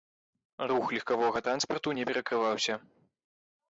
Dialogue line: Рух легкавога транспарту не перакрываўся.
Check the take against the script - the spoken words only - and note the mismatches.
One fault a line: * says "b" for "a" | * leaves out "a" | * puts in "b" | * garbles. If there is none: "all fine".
all fine